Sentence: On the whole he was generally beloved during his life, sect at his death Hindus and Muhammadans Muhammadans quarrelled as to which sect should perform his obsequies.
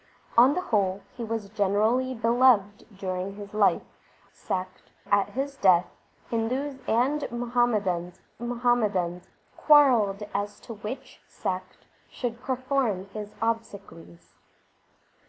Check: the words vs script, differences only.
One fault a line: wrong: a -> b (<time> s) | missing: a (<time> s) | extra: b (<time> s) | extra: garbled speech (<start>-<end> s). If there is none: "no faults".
no faults